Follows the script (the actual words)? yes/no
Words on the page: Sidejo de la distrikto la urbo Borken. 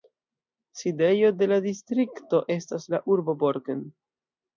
no